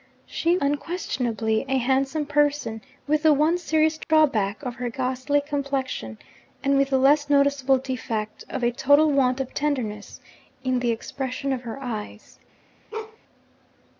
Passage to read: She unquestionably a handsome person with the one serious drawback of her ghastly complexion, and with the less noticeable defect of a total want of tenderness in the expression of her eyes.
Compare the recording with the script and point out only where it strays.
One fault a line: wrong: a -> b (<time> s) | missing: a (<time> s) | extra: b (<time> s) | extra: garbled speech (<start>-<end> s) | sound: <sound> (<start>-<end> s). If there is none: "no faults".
sound: dropout (4.0-4.1 s)
sound: bark (12.9-13.2 s)